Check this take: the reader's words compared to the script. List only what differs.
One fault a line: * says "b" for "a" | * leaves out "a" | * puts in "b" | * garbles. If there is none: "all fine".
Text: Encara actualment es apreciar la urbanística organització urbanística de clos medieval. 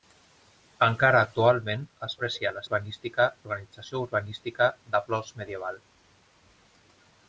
all fine